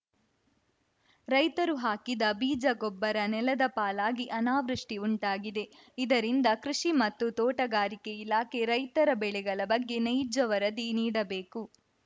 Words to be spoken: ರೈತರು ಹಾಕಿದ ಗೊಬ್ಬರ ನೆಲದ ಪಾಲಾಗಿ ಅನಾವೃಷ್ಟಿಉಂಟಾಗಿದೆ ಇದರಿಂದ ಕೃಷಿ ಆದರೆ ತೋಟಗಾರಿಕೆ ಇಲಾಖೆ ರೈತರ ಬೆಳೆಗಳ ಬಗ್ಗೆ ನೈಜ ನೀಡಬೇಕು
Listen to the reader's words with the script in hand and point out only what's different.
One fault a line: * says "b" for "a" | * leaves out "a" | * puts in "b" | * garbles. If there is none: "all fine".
* puts in "ಬೀಜ"
* says "ಮತ್ತು" for "ಆದರೆ"
* puts in "ವರದಿ"